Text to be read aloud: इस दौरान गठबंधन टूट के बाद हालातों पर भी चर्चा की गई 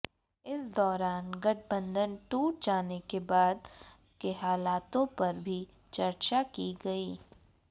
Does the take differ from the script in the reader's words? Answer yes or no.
yes